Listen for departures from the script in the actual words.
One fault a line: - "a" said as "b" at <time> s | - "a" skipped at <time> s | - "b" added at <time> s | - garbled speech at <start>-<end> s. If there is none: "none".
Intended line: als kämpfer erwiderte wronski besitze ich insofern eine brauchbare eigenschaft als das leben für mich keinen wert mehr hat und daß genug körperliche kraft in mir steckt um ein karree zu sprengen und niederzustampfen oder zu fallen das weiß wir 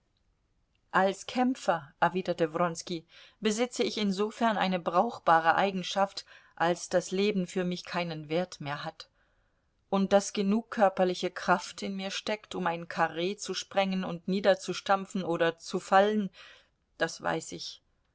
- "wir" said as "ich" at 17.5 s